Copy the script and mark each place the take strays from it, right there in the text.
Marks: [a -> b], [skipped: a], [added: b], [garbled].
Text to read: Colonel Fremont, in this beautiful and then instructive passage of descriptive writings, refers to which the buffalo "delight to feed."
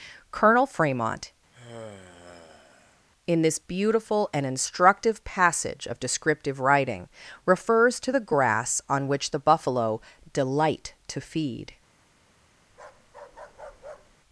Colonel Fremont, in this beautiful and [skipped: then] instructive passage of descriptive [writings, -> writing] refers to [added: the grass on] which the buffalo "delight to feed."